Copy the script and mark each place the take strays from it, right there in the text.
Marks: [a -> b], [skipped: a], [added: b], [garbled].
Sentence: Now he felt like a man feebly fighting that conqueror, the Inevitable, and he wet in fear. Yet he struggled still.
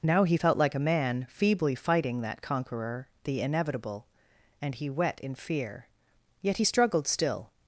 Now he felt like a man feebly fighting that conqueror, the Inevitable, and he wet in fear. Yet he struggled still.